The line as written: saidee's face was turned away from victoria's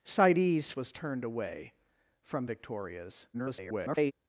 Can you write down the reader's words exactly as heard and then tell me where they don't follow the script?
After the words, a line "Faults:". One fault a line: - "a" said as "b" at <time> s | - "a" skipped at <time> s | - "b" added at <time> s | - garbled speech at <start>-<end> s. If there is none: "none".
saidee's was turned away from victoria's [garbled]
Faults:
- "face" skipped at 0.7 s
- garbled speech at 3.3-4.1 s